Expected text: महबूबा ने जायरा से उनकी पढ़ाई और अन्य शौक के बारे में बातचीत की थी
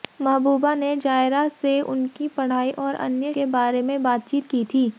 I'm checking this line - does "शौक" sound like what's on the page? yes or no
no